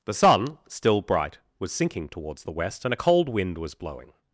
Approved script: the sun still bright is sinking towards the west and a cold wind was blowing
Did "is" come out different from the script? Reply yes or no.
yes